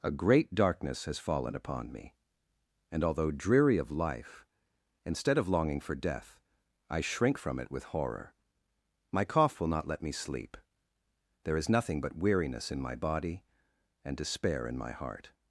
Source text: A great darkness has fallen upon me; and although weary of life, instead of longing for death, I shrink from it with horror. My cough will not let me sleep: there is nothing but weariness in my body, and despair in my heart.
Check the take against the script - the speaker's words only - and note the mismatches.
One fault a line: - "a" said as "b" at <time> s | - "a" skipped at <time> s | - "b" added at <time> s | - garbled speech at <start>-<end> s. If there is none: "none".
- "weary" said as "dreary" at 3.3 s